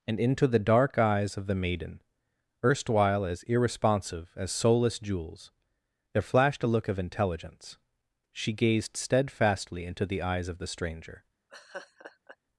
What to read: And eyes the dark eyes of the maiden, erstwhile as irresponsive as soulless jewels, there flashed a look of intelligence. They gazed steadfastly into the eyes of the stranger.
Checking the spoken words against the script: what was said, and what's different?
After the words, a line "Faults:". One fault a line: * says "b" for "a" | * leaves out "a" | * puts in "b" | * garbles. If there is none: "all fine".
And into the dark eyes of the maiden, erstwhile as irresponsive as soulless jewels, there flashed a look of intelligence. She gazed steadfastly into the eyes of the stranger.
Faults:
* says "into" for "eyes"
* says "She" for "They"